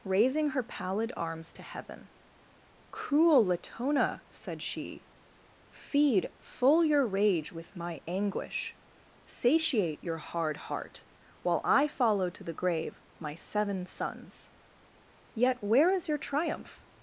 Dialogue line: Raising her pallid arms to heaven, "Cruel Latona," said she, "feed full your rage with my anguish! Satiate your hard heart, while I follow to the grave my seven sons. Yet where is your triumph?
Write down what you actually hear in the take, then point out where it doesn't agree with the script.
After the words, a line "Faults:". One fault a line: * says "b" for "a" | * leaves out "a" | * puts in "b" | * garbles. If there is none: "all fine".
Raising her pallid arms to heaven, "Cruel Latona," said she, "feed full your rage with my anguish! Satiate your hard heart, while I follow to the grave my seven sons. Yet where is your triumph?
Faults:
all fine